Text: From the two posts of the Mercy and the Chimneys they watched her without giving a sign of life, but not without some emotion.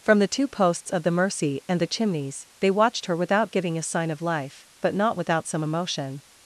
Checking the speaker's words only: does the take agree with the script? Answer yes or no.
yes